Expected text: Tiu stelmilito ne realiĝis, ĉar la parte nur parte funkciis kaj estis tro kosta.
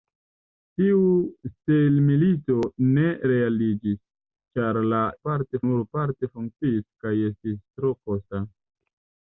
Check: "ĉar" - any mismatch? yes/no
no